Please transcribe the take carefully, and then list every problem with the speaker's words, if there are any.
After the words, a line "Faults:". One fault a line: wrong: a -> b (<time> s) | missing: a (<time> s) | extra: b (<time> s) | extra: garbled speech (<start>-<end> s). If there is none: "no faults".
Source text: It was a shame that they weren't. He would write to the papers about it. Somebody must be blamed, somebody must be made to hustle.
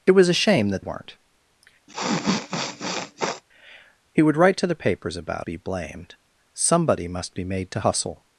It was a shame that weren't. He would write to the papers about be blamed, somebody must be made to hustle.
Faults:
missing: they (0.8 s)
missing: it Somebody must (5.5 s)